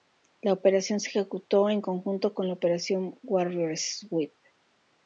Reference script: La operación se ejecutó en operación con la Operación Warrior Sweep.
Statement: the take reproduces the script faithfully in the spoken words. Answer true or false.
false